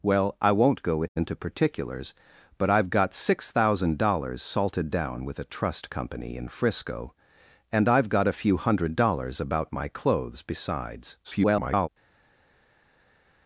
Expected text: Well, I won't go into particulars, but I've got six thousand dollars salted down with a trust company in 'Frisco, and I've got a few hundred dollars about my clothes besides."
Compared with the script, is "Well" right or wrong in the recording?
right